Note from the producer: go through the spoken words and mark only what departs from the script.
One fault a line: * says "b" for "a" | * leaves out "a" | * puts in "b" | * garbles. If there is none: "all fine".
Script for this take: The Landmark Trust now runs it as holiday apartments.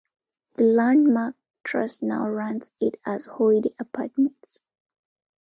all fine